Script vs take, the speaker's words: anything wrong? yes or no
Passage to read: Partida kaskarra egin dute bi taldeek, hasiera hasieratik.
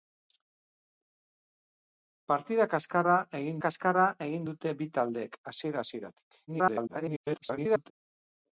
yes